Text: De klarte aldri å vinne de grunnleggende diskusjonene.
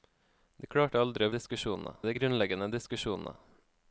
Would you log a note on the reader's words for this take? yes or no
yes